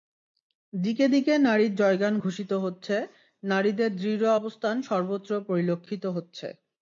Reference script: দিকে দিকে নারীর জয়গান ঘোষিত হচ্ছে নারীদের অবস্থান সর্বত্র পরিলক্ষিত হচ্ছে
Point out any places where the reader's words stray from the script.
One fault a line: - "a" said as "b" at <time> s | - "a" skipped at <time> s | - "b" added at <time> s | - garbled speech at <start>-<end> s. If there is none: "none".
- "দৃঢ়" added at 3.9 s